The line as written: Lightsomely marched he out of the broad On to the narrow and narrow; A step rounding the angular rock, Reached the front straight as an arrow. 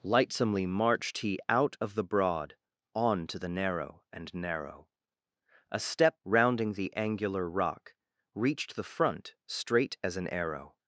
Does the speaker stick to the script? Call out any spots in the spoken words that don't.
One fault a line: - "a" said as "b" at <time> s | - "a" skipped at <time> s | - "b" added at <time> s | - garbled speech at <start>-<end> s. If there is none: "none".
none